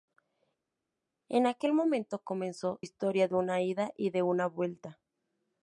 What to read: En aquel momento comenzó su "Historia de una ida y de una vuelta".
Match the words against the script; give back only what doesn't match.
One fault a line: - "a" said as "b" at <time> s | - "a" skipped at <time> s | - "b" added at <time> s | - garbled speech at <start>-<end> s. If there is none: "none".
- "su" skipped at 2.8 s